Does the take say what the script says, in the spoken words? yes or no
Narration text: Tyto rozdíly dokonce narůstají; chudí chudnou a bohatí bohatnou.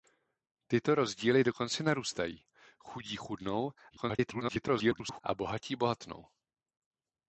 no